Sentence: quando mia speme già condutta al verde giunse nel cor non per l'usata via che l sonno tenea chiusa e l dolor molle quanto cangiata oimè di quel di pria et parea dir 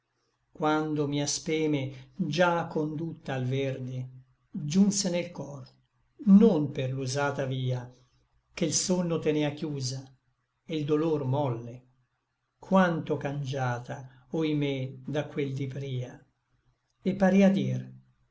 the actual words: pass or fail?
fail